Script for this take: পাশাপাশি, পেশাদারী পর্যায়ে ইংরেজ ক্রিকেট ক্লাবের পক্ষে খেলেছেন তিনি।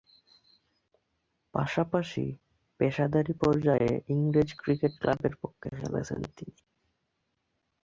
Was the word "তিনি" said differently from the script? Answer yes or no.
no